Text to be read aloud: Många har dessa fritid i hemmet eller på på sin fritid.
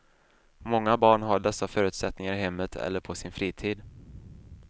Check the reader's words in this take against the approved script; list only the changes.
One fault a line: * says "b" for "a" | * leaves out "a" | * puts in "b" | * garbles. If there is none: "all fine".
* puts in "barn"
* says "förutsättningar" for "fritid"
* leaves out "på"